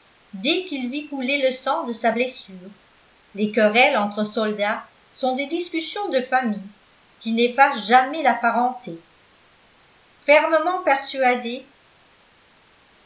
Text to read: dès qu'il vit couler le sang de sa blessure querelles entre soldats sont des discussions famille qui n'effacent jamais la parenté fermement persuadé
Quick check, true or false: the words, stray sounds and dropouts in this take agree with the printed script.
false